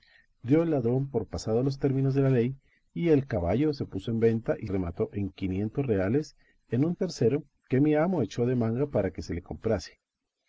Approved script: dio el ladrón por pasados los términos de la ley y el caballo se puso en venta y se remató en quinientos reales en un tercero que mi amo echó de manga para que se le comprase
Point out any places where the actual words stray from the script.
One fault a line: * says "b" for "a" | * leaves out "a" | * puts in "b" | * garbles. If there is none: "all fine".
* leaves out "se"